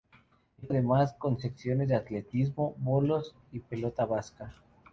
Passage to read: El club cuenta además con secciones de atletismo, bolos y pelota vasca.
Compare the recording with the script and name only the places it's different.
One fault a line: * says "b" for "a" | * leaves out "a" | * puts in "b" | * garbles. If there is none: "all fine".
* leaves out "club cuenta"